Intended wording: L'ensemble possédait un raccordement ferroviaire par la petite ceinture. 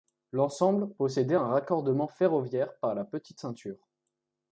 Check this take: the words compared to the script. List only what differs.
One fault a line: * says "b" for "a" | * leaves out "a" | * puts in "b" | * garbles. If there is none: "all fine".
all fine